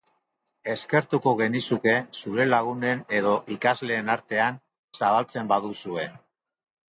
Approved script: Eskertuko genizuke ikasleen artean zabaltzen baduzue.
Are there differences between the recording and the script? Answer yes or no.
yes